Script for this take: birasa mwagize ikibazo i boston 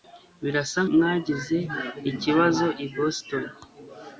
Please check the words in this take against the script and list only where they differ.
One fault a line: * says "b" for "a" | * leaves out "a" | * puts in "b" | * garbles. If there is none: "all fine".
all fine